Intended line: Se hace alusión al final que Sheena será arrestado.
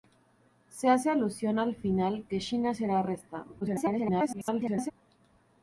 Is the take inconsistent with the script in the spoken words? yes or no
yes